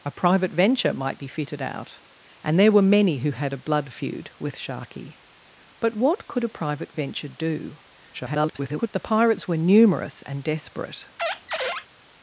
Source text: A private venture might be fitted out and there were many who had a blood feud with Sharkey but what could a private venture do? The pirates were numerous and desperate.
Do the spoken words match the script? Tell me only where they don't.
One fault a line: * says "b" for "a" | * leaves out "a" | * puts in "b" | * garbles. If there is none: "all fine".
* garbles